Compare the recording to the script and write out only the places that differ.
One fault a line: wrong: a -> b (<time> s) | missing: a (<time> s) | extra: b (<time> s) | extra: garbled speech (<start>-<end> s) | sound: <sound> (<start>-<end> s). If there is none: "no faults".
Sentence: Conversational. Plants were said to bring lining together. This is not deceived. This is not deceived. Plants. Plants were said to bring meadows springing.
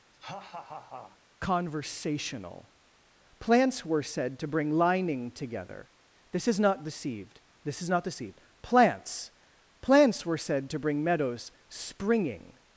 sound: laugh (0.1-1.2 s)